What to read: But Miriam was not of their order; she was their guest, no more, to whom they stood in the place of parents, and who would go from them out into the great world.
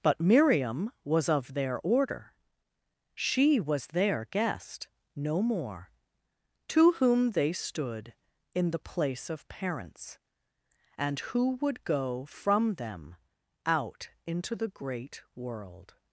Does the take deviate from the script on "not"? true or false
true